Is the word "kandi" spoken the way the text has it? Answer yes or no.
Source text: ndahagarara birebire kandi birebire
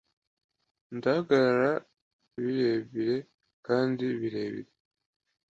yes